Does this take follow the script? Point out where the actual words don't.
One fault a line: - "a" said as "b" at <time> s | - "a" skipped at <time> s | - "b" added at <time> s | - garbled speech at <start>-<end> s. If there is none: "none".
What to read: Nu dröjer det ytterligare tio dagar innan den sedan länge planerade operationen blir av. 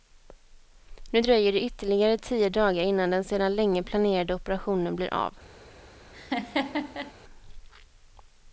none